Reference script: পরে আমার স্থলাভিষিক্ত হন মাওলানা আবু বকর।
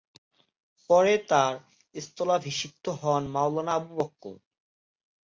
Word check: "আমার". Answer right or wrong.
wrong